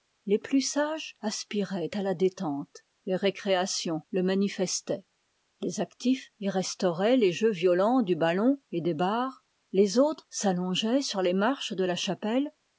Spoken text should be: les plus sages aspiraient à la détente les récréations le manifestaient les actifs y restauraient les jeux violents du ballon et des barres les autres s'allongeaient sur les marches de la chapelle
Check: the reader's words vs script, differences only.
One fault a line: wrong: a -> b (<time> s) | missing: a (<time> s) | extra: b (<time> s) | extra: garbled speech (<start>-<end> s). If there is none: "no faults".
no faults